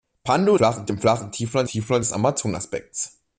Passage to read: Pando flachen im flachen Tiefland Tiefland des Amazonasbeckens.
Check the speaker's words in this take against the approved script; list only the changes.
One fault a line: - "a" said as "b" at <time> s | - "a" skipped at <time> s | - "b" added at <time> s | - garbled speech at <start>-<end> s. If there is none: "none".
none